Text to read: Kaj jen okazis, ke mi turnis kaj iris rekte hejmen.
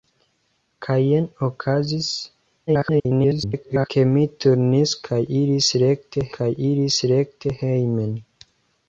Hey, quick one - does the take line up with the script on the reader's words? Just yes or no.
no